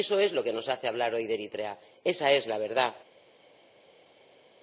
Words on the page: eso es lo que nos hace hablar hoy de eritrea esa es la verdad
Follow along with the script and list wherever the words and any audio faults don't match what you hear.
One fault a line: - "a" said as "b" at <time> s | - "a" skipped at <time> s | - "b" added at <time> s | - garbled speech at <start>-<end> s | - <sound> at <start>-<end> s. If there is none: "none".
none